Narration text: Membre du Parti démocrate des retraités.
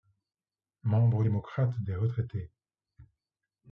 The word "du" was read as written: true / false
false